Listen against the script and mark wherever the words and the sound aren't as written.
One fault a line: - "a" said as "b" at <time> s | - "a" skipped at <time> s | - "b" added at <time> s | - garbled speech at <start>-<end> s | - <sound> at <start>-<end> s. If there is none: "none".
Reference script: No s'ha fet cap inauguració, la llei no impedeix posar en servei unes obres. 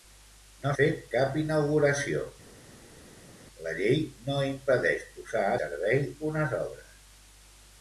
- "s'ha" skipped at 0.7 s
- "en" skipped at 5.5 s